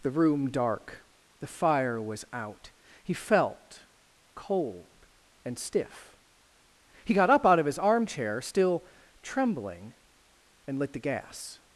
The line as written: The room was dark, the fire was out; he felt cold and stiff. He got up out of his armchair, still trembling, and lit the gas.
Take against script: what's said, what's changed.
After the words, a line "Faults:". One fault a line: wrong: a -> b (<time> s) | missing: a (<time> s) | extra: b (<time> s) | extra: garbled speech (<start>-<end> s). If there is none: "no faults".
The room dark, the fire was out; he felt cold and stiff. He got up out of his armchair, still trembling, and lit the gas.
Faults:
missing: was (0.5 s)